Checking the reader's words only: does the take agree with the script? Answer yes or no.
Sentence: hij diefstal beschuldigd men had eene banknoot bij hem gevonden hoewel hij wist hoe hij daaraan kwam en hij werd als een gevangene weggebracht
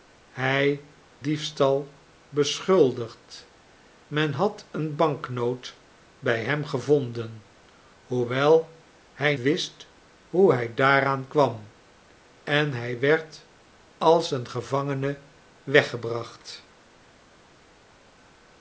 yes